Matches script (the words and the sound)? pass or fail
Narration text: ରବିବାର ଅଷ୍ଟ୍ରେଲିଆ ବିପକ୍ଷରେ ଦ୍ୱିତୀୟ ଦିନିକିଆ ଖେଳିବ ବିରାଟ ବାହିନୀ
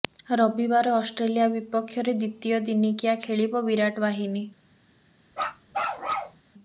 fail